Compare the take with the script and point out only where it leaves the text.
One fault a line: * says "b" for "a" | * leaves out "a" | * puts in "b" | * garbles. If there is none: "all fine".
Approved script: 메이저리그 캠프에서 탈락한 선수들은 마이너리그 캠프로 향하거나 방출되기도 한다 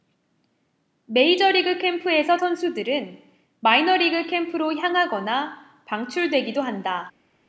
* leaves out "탈락한"